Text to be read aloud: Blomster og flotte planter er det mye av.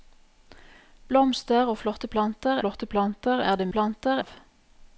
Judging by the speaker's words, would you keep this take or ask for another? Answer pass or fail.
fail